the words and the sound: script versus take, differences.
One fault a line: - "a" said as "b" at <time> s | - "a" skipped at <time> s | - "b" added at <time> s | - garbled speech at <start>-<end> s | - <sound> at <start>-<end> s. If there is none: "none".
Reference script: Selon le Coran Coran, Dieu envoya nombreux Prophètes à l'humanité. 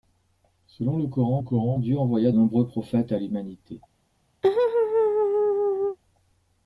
- laugh at 4.4-6.0 s